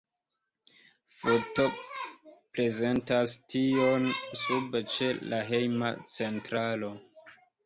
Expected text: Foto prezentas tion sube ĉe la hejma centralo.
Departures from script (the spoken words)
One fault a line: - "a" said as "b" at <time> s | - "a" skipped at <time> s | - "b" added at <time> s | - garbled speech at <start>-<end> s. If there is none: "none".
none